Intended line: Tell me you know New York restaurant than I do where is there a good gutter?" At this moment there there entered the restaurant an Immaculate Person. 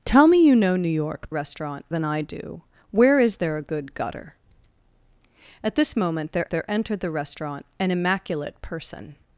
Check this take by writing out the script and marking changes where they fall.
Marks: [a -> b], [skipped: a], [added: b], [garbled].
Tell me you know New York restaurant than I do where is there a good gutter?" At this moment there there entered the restaurant an Immaculate Person.